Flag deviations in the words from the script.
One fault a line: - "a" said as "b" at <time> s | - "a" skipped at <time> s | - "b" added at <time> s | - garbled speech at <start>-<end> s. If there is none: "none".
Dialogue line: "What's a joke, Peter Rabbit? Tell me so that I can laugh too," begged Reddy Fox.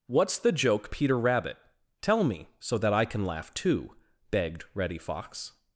- "a" said as "the" at 0.4 s